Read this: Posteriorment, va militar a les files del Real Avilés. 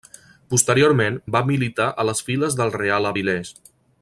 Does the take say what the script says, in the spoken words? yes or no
yes